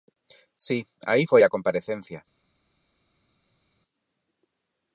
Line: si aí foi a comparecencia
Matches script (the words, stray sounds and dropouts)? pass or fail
pass